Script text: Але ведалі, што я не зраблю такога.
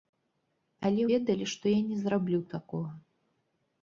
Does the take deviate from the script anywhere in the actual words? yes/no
no